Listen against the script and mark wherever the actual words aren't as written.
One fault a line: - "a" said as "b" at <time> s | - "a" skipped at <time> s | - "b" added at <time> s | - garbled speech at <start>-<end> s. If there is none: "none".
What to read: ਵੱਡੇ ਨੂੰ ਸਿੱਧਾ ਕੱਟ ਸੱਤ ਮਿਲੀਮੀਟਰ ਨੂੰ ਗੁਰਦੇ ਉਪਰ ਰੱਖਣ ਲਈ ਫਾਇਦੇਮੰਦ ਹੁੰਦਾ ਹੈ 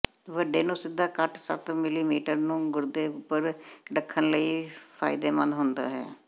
none